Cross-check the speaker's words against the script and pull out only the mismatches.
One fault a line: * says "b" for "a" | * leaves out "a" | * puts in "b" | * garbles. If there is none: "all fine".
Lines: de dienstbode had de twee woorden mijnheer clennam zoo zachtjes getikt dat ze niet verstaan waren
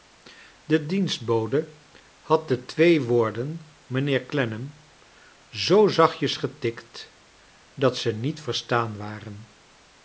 all fine